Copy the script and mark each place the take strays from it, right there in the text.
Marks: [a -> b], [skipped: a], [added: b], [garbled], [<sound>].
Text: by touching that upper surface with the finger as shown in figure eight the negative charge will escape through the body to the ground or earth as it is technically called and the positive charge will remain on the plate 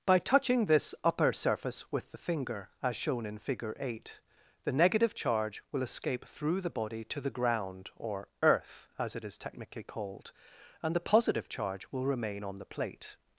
by touching [that -> this] upper surface with the finger as shown in figure eight the negative charge will escape through the body to the ground or earth as it is technically called and the positive charge will remain on the plate